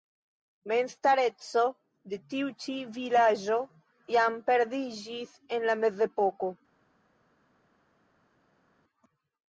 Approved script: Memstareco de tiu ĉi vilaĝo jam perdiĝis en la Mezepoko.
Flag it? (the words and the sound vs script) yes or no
no